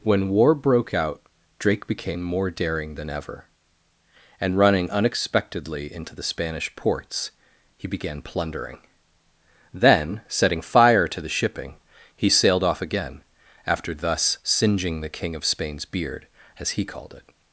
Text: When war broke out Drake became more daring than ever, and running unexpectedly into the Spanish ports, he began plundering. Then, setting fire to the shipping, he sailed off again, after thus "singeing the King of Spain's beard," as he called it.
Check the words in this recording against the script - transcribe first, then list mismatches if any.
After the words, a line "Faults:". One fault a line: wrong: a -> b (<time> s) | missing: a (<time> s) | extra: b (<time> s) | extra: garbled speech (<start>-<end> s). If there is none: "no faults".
When war broke out Drake became more daring than ever, and running unexpectedly into the Spanish ports, he began plundering. Then, setting fire to the shipping, he sailed off again, after thus "singeing the King of Spain's beard," as he called it.
Faults:
no faults